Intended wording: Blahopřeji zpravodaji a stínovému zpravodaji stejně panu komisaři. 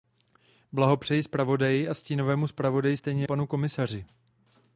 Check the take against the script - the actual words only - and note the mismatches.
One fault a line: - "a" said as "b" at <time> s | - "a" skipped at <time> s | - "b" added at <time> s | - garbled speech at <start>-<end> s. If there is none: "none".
none